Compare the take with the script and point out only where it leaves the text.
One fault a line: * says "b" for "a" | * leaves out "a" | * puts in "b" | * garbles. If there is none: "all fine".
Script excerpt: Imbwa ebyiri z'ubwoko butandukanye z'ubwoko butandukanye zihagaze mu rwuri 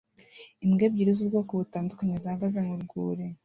* leaves out "z'ubwoko butandukanye"